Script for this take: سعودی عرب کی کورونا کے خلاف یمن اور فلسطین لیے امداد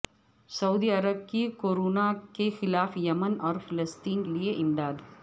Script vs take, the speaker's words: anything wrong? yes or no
no